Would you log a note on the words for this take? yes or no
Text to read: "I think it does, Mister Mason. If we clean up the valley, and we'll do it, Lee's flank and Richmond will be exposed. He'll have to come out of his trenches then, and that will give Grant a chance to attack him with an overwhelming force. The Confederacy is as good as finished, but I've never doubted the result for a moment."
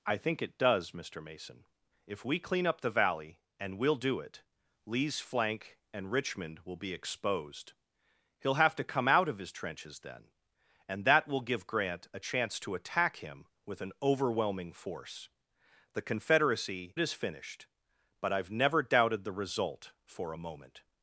yes